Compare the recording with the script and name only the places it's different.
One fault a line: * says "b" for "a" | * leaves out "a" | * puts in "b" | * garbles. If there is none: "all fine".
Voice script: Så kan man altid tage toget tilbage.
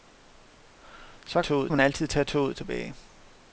* says "toget" for "kan"